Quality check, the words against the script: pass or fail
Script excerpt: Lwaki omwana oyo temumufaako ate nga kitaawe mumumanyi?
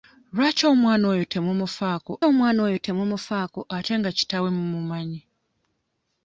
fail